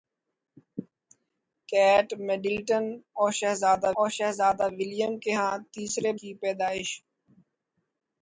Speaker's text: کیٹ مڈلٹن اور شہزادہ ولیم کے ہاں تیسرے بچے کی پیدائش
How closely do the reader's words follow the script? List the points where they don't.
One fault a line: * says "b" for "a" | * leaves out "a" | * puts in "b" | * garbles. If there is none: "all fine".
* puts in "اور شہزادہ"
* leaves out "بچے"